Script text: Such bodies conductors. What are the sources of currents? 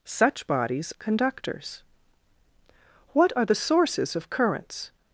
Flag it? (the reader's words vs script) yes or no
no